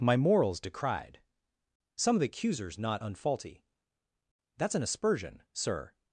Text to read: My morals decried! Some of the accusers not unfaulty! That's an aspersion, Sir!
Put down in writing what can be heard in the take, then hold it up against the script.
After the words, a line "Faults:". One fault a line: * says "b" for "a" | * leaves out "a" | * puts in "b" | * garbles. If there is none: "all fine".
My morals decried! Some of the accusers not unfaulty! That's an aspersion, Sir!
Faults:
all fine